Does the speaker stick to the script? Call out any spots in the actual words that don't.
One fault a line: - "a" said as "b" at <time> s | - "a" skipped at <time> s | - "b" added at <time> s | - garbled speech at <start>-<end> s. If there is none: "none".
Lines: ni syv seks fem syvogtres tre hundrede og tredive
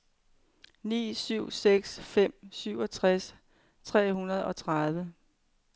none